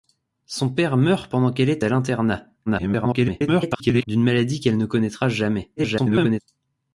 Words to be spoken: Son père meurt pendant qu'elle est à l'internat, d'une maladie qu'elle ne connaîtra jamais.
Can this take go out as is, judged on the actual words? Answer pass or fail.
fail